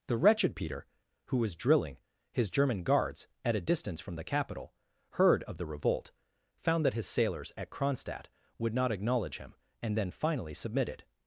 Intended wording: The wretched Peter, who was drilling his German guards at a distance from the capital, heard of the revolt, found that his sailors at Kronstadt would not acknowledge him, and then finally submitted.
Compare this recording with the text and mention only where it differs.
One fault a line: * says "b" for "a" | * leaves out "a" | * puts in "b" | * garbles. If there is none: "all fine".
all fine